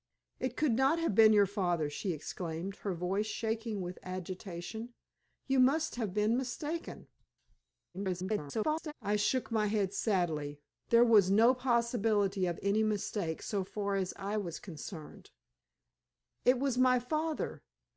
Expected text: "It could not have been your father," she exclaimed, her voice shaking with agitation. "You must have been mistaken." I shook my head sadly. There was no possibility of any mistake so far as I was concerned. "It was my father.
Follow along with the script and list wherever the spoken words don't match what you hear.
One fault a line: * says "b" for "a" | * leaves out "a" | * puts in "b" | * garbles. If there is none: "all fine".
* garbles